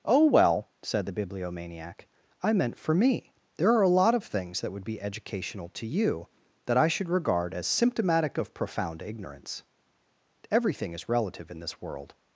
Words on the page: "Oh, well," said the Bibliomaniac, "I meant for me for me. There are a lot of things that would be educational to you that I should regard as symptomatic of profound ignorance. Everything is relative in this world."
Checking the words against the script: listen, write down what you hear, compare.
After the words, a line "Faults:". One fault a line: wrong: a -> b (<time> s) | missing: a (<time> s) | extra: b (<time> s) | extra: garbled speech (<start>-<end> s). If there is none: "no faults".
"Oh, well," said the Bibliomaniac, "I meant for me. There are a lot of things that would be educational to you that I should regard as symptomatic of profound ignorance. Everything is relative in this world."
Faults:
missing: for me (3.3 s)